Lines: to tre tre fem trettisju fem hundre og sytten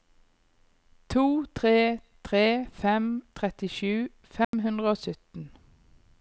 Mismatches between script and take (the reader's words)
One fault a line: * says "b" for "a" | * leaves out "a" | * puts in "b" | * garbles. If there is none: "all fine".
all fine